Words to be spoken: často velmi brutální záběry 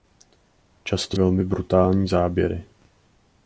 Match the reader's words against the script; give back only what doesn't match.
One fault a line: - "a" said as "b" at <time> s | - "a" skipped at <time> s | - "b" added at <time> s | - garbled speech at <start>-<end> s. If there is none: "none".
none